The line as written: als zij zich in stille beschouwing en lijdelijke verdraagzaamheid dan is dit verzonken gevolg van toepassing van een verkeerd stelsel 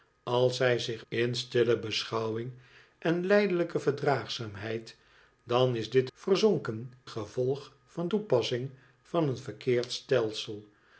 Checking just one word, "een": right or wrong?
right